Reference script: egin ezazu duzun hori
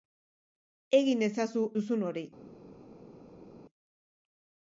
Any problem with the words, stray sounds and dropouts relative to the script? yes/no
no